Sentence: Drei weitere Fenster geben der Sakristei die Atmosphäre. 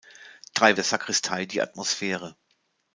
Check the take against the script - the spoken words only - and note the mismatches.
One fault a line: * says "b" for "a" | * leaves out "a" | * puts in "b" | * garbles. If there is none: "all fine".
* leaves out "weitere Fenster geben"